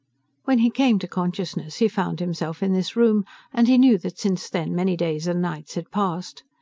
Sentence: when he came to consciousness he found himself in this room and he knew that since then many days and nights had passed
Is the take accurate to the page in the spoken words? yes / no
yes